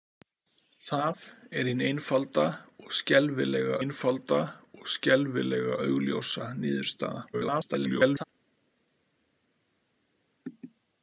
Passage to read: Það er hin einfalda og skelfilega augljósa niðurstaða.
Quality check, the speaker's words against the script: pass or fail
fail